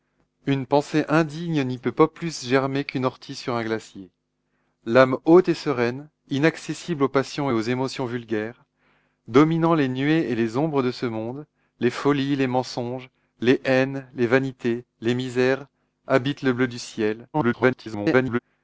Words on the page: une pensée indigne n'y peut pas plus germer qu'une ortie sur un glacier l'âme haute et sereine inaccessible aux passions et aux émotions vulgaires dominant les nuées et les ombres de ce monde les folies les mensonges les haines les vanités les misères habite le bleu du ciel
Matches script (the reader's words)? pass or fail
fail